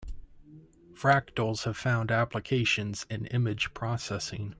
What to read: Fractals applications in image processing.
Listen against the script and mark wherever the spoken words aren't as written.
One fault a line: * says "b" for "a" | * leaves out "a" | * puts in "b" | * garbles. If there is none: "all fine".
* puts in "have found"